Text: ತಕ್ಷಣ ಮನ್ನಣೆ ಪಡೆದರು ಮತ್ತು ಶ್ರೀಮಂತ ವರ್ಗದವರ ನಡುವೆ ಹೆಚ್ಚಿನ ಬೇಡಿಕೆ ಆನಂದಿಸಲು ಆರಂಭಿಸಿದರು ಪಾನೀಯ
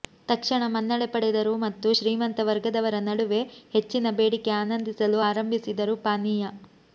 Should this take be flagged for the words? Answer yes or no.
no